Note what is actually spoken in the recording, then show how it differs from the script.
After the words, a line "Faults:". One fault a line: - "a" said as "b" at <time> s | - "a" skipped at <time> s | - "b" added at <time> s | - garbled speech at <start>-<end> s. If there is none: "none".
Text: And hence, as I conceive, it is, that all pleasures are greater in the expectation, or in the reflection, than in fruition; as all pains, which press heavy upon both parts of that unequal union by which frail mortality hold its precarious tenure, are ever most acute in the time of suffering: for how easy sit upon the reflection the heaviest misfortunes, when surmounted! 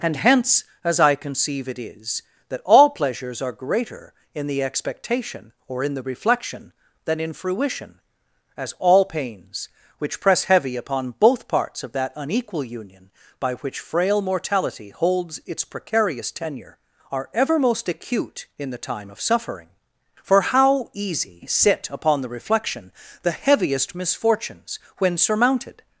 And hence, as I conceive, it is, that all pleasures are greater in the expectation, or in the reflection, than in fruition; as all pains, which press heavy upon both parts of that unequal union by which frail mortality holds its precarious tenure, are ever most acute in the time of suffering: for how easy sit upon the reflection the heaviest misfortunes, when surmounted!
Faults:
- "hold" said as "holds" at 14.9 s